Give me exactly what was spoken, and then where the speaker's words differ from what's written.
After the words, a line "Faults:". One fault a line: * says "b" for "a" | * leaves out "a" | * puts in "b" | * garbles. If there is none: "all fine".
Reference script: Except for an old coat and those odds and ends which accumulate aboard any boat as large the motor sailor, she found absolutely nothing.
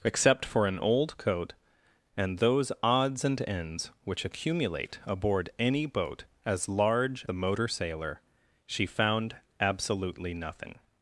Except for an old coat and those odds and ends which accumulate aboard any boat as large the motor sailor, she found absolutely nothing.
Faults:
all fine